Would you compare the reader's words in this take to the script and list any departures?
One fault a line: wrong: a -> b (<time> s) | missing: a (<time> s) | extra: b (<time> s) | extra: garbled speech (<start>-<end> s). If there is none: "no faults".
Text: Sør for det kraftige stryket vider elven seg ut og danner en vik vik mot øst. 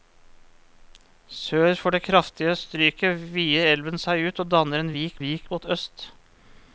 no faults